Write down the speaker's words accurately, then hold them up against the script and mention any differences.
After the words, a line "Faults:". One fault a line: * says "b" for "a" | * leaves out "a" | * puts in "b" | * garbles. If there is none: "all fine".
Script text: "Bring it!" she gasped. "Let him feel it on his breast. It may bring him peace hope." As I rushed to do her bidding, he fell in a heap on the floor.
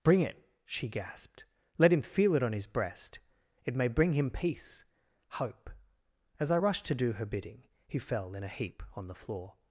"Bring it!" she gasped. "Let him feel it on his breast. It may bring him peace hope." As I rushed to do her bidding, he fell in a heap on the floor.
Faults:
all fine